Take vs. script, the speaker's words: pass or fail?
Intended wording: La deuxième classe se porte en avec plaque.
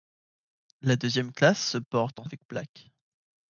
pass